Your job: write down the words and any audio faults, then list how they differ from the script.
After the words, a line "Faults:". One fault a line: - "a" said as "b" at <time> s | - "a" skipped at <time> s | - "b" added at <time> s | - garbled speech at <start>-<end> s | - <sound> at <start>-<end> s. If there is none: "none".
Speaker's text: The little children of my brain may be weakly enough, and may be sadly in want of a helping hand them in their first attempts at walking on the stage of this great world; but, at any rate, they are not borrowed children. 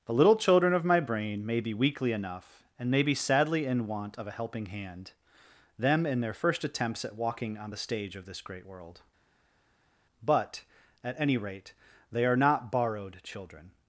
The little children of my brain may be weakly enough, and may be sadly in want of a helping hand them in their first attempts at walking on the stage of this great world; but, at any rate, they are not borrowed children.
Faults:
none